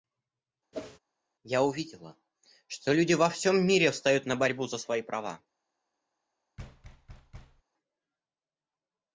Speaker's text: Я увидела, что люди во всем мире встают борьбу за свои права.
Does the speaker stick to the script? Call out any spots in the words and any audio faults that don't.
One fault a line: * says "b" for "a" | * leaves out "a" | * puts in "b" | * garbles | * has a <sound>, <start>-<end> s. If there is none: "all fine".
* has a whoosh, 0.7-1.0 s
* puts in "на"
* has a thud, 6.6-7.6 s